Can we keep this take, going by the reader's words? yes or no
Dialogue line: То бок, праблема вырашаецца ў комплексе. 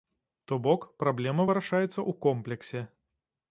yes